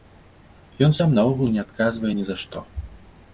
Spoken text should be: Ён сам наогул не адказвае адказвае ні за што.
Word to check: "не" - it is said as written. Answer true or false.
true